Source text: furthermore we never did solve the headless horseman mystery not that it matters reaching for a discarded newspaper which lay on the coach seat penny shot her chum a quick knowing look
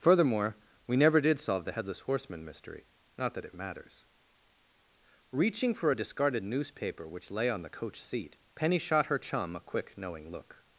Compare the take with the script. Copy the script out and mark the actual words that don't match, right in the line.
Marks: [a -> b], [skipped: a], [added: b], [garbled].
furthermore we never did solve the headless horseman mystery not that it matters reaching for a discarded newspaper which lay on the coach seat penny shot her chum a quick knowing look